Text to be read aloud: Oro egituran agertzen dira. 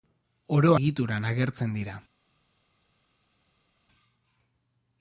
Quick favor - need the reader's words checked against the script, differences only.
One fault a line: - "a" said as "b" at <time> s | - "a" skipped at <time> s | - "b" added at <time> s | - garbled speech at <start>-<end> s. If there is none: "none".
none